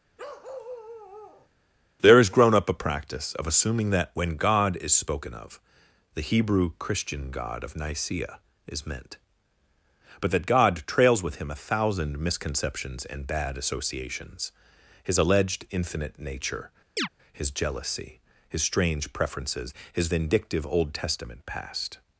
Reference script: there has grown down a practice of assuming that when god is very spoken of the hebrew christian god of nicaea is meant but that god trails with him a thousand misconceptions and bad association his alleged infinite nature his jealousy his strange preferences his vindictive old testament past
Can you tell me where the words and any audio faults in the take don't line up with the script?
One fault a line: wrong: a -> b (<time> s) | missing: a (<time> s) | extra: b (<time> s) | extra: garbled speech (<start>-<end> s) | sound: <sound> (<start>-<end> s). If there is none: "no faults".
sound: bark (0.2-1.5 s)
wrong: down -> up (2.5 s)
missing: very (4.9 s)
wrong: association -> associations (13.6 s)
sound: chirp (17.0-17.1 s)